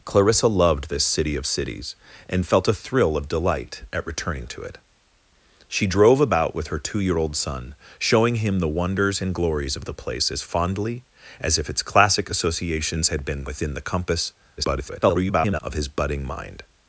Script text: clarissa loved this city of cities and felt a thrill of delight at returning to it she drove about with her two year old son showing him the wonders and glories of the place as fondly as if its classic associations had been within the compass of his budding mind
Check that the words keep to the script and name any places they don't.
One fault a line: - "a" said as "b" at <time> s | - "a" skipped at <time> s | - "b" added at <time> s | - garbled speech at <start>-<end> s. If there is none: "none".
- garbled speech at 14.6-15.6 s